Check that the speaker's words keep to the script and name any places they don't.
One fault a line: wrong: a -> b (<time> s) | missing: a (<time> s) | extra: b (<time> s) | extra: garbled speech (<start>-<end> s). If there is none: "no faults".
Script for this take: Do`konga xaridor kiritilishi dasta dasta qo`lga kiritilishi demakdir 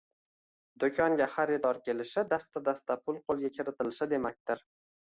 wrong: kiritilishi -> kelishi (1.9 s)
extra: pul (3.1 s)